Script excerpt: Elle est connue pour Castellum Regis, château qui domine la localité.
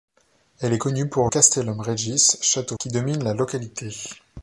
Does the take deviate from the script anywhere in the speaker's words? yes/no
no